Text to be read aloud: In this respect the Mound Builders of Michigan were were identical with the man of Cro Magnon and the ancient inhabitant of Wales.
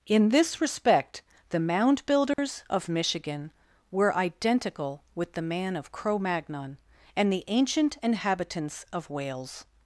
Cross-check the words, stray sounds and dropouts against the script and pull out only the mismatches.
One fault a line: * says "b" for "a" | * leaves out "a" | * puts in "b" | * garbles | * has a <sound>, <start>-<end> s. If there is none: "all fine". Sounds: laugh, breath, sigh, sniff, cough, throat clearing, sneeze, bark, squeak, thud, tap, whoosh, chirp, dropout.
* has a dropout, 2.3-2.4 s
* leaves out "were"
* says "inhabitants" for "inhabitant"